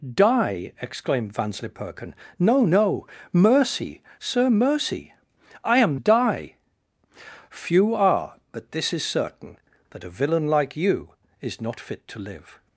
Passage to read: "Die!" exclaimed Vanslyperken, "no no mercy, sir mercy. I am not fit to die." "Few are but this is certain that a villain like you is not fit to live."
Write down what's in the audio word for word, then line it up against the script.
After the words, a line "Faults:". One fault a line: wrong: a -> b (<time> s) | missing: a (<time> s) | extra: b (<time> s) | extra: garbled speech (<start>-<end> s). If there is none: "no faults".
"Die!" exclaimed Vanslyperken, "no no mercy, sir mercy. I am die." "Few are but this is certain that a villain like you is not fit to live."
Faults:
missing: not fit to (6.0 s)